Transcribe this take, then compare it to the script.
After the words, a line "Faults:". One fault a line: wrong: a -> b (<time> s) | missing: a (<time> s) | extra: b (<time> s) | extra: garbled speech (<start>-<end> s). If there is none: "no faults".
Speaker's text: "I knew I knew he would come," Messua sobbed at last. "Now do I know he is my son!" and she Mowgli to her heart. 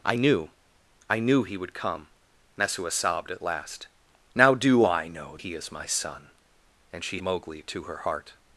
"I knew I knew he would come," Messua sobbed at last. "Now do I know he is my son!" and she Mowgli to her heart.
Faults:
no faults